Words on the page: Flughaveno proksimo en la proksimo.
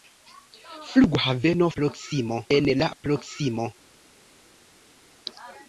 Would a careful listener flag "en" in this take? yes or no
no